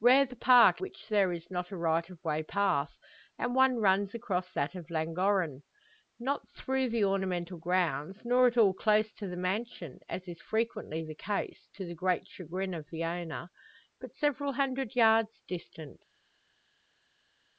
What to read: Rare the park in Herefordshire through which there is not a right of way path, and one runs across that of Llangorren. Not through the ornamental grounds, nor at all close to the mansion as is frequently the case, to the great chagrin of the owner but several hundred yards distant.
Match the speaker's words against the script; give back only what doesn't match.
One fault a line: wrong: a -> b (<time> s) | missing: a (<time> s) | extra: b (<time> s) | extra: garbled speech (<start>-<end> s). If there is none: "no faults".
missing: in Herefordshire through (0.8 s)